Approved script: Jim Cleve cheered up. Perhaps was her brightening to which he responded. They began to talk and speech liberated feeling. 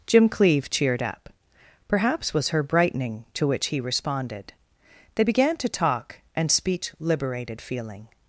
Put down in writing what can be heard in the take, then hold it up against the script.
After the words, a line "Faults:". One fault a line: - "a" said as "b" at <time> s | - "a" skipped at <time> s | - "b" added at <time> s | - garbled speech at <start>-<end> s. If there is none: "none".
Jim Cleve cheered up. Perhaps was her brightening to which he responded. They began to talk and speech liberated feeling.
Faults:
none